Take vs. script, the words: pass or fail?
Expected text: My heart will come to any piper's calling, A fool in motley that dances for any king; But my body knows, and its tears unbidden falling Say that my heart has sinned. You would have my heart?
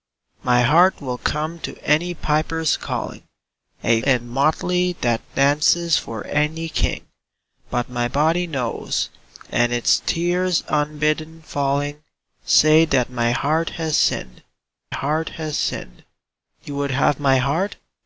fail